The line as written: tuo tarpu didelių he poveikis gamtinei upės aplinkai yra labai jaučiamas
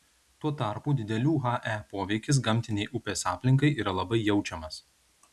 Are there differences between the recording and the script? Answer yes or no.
no